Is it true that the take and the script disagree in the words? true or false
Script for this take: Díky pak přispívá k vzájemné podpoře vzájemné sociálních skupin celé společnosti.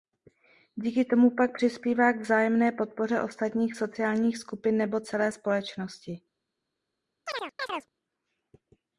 true